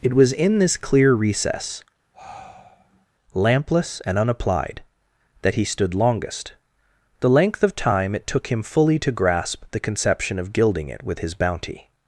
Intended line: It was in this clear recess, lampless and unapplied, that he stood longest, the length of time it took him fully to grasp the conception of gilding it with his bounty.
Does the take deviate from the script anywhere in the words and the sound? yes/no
yes